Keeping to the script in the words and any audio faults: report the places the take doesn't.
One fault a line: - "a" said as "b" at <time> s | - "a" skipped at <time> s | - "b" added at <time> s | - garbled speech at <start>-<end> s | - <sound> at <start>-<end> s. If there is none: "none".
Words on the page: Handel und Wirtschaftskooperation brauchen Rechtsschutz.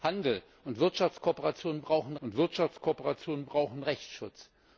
- "und Wirtschaftskooperation brauchen" added at 2.2 s